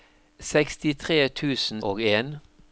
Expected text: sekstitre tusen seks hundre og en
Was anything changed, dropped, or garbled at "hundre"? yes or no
yes